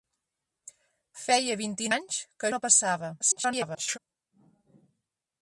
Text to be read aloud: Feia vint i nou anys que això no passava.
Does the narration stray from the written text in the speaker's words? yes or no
yes